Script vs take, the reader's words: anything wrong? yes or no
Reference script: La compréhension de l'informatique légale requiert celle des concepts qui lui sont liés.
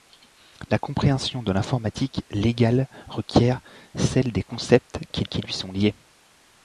yes